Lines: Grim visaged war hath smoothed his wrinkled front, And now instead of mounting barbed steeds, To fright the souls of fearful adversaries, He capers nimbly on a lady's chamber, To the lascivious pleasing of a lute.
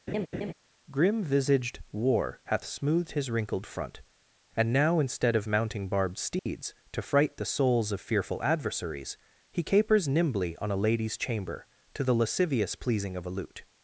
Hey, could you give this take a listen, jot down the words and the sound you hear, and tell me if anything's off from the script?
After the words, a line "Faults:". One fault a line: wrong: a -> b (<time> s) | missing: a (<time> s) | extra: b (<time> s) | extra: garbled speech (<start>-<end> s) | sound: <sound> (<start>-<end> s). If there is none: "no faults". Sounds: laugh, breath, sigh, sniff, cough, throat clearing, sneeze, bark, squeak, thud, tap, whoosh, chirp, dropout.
Grim visaged war hath smoothed his wrinkled front, And now instead of mounting barbed steeds, To fright the souls of fearful adversaries, He capers nimbly on a lady's chamber, To the lascivious pleasing of a lute.
Faults:
sound: laugh (0.1-0.5 s)
sound: dropout (6.4-6.5 s)